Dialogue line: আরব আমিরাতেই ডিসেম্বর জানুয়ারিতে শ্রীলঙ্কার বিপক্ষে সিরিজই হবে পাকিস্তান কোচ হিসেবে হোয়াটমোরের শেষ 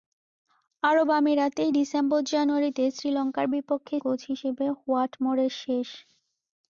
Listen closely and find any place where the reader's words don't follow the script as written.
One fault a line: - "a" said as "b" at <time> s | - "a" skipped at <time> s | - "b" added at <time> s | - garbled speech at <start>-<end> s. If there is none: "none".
- "সিরিজই হবে পাকিস্তান" skipped at 4.0 s